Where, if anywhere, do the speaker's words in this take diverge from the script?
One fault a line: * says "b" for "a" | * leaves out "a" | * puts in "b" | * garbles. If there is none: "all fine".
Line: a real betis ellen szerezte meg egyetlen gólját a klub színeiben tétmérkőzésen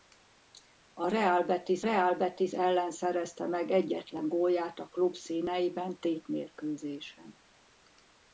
* puts in "real betis"